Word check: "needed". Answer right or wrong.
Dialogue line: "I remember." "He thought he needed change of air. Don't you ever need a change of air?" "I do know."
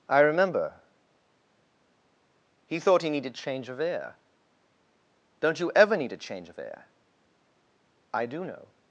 right